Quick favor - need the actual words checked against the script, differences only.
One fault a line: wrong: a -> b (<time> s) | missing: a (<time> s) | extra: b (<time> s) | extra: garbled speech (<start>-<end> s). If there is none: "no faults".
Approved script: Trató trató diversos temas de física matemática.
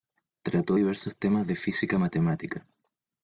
missing: trató (0.8 s)